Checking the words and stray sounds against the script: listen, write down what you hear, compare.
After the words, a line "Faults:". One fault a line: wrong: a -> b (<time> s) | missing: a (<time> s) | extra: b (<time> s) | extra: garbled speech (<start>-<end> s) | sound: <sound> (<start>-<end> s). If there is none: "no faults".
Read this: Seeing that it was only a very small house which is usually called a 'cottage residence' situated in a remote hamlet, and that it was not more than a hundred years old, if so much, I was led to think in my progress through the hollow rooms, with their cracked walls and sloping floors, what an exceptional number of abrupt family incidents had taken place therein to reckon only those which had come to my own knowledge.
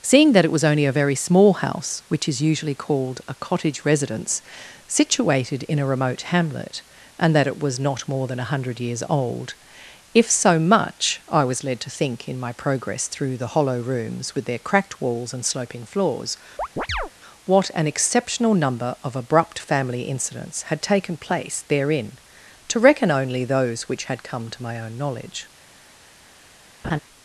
Seeing that it was only a very small house which is usually called a 'cottage residence' situated in a remote hamlet, and that it was not more than a hundred years old, if so much, I was led to think in my progress through the hollow rooms, with their cracked walls and sloping floors, what an exceptional number of abrupt family incidents had taken place therein to reckon only those which had come to my own knowledge.
Faults:
sound: chirp (16.6-17.1 s)
sound: laugh (26.8-27.0 s)